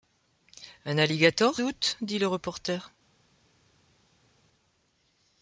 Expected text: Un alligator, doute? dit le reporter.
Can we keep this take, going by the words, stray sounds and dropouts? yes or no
yes